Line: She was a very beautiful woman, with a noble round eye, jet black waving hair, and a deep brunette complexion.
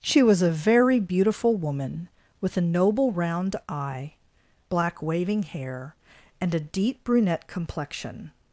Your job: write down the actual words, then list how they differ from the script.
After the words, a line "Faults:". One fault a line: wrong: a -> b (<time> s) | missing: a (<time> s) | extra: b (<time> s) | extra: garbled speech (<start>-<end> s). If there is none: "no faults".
She was a very beautiful woman, with a noble round eye, black waving hair, and a deep brunette complexion.
Faults:
missing: jet (4.1 s)